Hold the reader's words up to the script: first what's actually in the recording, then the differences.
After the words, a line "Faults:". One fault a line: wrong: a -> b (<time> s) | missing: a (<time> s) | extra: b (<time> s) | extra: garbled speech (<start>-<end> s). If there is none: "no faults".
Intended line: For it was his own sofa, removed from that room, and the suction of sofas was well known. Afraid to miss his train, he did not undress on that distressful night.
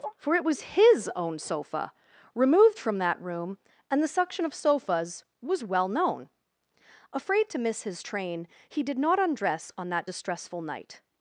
For it was his own sofa, removed from that room, and the suction of sofas was well known. Afraid to miss his train, he did not undress on that distressful night.
Faults:
no faults